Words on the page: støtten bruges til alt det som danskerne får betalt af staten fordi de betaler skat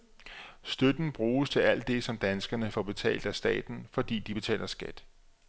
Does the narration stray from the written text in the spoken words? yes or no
no